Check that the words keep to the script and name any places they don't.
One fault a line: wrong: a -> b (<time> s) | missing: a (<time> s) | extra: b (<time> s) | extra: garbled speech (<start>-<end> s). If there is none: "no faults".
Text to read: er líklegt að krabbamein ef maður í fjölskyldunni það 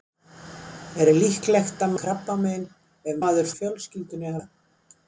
no faults